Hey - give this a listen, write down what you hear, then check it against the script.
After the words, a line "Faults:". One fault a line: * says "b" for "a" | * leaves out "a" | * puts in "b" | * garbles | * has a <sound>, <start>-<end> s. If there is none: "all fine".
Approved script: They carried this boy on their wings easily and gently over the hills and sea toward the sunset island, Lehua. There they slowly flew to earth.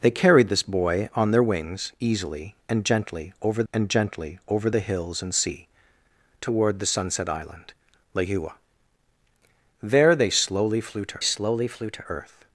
They carried this boy on their wings easily and gently over and gently over the hills and sea toward the sunset island, Lehua. There they slowly flew to slowly flew to earth.
Faults:
* puts in "and gently over"
* puts in "slowly flew to"